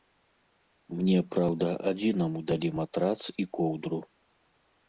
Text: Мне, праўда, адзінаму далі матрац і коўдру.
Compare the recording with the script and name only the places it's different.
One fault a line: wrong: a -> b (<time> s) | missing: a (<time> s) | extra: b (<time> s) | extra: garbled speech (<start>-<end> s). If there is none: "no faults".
no faults